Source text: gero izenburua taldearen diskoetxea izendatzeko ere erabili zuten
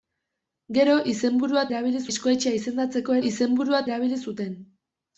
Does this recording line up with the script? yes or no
no